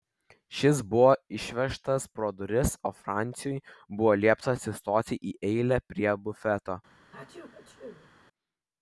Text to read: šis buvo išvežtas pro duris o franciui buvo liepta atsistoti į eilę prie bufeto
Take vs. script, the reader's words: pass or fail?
pass